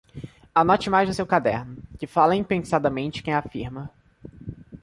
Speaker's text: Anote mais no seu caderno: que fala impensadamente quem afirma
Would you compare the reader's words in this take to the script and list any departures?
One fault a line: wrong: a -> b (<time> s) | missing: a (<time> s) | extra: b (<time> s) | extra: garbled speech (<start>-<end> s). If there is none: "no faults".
no faults